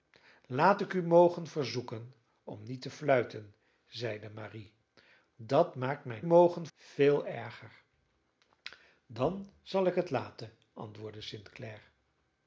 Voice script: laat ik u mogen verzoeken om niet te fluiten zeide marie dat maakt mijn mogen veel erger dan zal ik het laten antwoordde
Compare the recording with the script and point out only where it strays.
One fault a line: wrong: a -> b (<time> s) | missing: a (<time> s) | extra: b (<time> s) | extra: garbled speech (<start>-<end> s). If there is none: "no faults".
no faults